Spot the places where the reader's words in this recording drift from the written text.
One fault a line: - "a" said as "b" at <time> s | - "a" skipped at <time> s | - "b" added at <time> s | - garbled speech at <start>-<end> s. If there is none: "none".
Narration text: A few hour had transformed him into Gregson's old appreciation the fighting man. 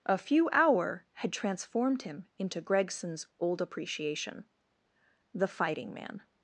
none